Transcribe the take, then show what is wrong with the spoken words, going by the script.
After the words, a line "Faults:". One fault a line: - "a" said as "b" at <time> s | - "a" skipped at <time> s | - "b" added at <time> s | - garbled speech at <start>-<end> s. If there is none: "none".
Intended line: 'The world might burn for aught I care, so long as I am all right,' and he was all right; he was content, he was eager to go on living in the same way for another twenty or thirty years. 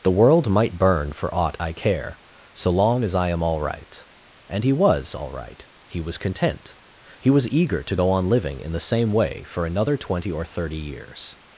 'The world might burn for aught I care, so long as I am all right,' and he was all right; he was content, he was eager to go on living in the same way for another twenty or thirty years.
Faults:
none